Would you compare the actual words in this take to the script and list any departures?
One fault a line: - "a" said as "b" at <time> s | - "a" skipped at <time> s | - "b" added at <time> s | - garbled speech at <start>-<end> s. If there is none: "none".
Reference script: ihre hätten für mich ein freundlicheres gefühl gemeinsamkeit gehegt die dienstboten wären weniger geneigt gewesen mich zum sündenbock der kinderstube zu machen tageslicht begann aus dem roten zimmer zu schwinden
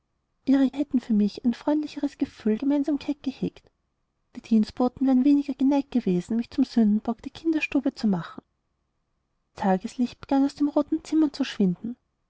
none